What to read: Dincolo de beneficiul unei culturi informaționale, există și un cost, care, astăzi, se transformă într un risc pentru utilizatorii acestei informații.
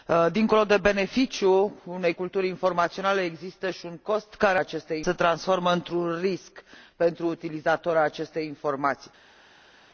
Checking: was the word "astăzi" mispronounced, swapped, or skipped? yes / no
yes